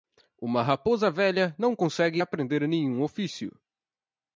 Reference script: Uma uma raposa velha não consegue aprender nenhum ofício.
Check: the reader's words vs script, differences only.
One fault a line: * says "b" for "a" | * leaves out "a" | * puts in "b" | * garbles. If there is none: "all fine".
* leaves out "uma"